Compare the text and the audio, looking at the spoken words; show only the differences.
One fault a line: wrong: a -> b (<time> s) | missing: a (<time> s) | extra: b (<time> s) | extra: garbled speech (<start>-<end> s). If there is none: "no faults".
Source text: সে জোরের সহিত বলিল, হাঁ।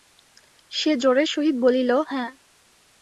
no faults